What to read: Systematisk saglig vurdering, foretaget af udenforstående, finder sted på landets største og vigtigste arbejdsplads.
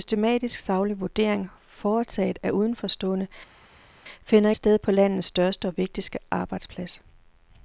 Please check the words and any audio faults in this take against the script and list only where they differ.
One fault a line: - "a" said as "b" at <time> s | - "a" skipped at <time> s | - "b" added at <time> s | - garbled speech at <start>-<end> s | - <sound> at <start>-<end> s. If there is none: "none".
none